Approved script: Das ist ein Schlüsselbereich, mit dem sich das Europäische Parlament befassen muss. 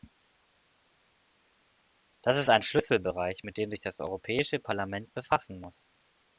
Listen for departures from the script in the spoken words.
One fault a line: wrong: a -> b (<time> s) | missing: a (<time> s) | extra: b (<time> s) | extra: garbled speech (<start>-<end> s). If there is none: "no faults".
no faults